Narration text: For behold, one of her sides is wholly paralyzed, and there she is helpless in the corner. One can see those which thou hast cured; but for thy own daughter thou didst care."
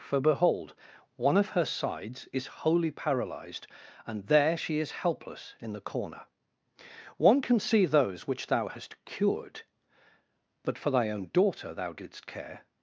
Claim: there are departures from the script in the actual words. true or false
false